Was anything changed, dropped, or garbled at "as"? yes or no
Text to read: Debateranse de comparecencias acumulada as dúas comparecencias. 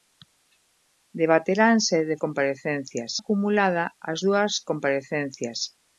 no